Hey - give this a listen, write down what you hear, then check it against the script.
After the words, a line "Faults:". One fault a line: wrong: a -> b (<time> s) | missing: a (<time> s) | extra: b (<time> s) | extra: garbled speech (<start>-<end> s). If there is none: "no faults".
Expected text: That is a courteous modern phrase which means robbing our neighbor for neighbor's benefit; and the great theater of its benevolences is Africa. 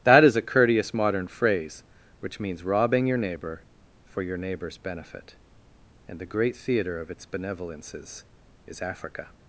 That is a courteous modern phrase which means robbing your neighbor for your neighbor's benefit; and the great theater of its benevolences is Africa.
Faults:
wrong: our -> your (3.1 s)
extra: your (4.2 s)